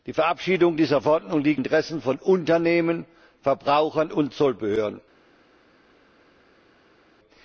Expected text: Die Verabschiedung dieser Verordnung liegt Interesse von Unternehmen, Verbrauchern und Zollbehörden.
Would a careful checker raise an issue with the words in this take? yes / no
no